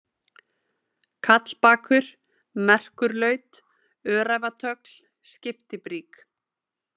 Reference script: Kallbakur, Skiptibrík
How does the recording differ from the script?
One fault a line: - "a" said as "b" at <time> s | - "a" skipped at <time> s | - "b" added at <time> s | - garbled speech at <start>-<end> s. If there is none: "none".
- "Merkurlaut Öræfatögl" added at 2.7 s